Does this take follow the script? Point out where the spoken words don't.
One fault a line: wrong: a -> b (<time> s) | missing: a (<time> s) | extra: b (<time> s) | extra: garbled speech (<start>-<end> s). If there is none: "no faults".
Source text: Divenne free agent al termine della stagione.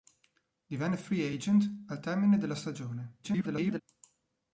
extra: garbled speech (3.2-3.8 s)